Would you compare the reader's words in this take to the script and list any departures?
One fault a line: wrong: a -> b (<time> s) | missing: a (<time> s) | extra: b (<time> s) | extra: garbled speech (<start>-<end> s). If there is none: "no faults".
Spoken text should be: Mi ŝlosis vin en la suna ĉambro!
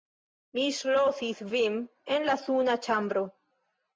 no faults